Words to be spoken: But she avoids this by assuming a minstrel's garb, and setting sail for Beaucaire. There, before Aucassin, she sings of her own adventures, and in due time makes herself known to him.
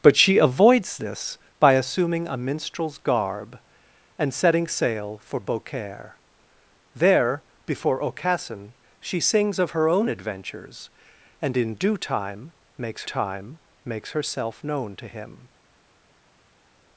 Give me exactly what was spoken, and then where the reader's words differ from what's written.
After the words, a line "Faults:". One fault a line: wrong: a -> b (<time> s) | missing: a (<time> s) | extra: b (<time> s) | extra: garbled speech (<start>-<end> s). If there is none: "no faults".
But she avoids this by assuming a minstrel's garb, and setting sail for Beaucaire. There, before Aucassin, she sings of her own adventures, and in due time makes time makes herself known to him.
Faults:
extra: time makes (13.0 s)